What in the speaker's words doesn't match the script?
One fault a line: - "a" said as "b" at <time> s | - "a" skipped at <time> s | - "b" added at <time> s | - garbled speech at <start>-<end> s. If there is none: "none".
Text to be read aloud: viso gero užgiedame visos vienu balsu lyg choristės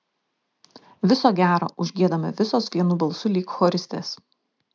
none